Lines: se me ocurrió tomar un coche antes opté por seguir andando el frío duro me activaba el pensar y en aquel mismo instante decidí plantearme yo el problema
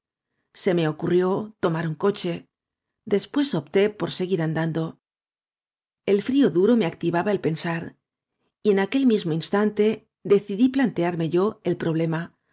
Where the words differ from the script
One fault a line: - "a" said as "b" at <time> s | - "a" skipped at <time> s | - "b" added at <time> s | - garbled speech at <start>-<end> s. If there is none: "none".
- "antes" said as "después" at 3.0 s